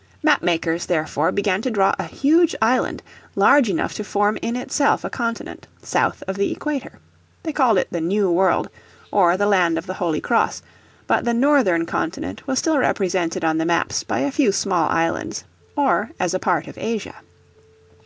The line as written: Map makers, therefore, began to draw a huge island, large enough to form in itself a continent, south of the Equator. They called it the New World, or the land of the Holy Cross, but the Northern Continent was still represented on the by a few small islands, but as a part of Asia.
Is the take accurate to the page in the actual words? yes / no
no